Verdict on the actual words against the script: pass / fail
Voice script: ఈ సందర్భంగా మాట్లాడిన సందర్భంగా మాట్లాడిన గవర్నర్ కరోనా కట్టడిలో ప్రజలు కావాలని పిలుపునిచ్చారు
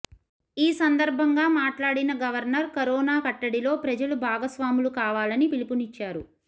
fail